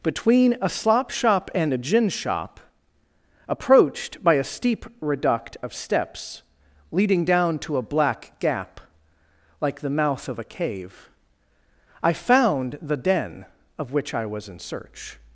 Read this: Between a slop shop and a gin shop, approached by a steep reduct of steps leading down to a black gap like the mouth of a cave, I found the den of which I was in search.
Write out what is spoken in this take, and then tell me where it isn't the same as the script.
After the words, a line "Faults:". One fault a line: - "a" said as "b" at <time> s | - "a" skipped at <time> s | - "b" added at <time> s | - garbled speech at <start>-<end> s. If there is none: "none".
Between a slop shop and a gin shop, approached by a steep reduct of steps leading down to a black gap like the mouth of a cave, I found the den of which I was in search.
Faults:
none